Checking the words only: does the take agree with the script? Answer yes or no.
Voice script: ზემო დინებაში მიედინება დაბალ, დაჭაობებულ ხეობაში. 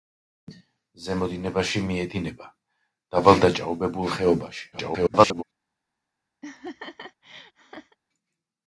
no